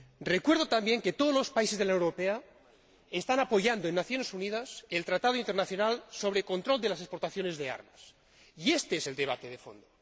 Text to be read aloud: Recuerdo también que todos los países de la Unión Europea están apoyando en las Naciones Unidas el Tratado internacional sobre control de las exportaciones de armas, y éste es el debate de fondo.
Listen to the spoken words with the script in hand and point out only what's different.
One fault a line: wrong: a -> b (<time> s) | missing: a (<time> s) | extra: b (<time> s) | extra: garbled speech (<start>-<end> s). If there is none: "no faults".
no faults